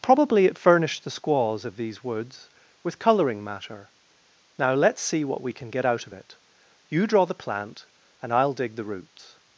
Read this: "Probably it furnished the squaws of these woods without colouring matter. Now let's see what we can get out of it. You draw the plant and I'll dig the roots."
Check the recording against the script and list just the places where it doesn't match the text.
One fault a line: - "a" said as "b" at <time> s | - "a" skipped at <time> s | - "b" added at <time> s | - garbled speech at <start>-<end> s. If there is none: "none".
- "without" said as "with" at 2.8 s